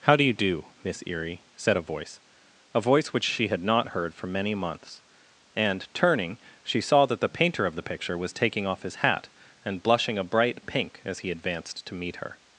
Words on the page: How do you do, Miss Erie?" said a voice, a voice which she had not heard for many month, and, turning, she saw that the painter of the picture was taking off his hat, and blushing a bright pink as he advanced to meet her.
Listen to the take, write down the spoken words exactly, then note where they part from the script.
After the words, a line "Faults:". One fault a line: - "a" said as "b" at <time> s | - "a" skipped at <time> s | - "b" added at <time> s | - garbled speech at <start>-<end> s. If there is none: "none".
How do you do, Miss Erie?" said a voice, a voice which she had not heard for many months, and, turning, she saw that the painter of the picture was taking off his hat, and blushing a bright pink as he advanced to meet her.
Faults:
- "month" said as "months" at 4.5 s